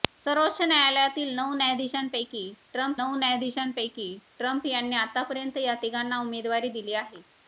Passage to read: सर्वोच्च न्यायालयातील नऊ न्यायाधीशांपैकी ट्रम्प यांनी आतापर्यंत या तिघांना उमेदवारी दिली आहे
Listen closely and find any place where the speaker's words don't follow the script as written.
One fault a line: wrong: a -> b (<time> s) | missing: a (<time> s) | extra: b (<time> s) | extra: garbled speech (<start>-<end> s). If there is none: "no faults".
extra: नऊ न्यायाधीशांपैकी ट्रम्प (3.0 s)